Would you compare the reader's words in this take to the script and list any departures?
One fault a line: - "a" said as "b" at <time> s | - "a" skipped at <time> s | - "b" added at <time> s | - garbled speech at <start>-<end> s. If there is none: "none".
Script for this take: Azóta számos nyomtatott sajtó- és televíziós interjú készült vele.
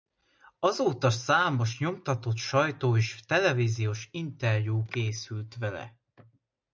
none